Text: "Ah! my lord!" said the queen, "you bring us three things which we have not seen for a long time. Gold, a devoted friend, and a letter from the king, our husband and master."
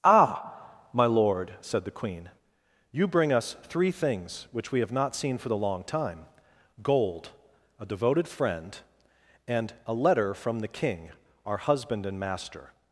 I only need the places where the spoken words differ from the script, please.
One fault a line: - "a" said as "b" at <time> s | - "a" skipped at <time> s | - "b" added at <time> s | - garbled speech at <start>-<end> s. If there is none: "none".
- "a" said as "the" at 5.5 s